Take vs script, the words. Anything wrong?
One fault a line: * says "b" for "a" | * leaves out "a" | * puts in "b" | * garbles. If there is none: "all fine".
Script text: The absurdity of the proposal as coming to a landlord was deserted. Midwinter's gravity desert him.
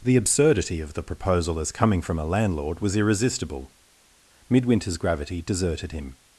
* says "from" for "to"
* says "irresistible" for "deserted"
* says "deserted" for "desert"